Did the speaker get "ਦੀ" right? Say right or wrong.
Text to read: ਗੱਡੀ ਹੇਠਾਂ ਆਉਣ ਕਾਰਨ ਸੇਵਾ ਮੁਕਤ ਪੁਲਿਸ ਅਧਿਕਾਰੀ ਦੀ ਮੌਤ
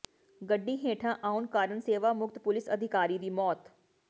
right